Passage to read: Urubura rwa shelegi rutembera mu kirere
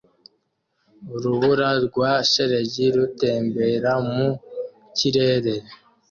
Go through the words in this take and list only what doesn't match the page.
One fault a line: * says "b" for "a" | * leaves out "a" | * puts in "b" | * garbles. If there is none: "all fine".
all fine